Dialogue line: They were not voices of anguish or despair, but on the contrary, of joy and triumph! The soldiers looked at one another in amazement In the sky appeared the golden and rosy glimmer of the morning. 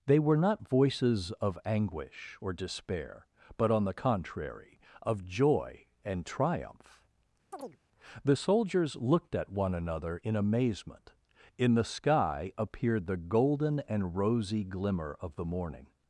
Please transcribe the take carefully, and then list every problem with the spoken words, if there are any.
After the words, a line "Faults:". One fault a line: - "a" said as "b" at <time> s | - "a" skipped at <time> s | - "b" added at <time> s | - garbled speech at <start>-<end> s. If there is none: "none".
They were not voices of anguish or despair, but on the contrary, of joy and triumph! The soldiers looked at one another in amazement In the sky appeared the golden and rosy glimmer of the morning.
Faults:
none